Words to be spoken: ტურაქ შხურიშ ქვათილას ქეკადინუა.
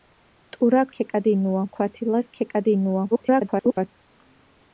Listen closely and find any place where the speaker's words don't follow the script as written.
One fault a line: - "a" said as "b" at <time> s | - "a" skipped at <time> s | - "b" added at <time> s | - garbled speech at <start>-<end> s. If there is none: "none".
- "შხურიშ" said as "ქეკადინუა" at 0.9 s
- garbled speech at 3.1-3.9 s